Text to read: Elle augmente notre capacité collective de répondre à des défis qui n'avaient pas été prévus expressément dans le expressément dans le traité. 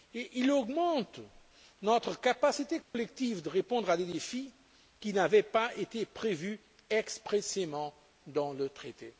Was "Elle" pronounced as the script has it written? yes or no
no